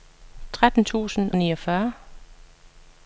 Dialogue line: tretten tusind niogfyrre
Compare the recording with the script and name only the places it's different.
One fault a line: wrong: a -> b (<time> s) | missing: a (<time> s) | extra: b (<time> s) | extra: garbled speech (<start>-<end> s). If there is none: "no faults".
no faults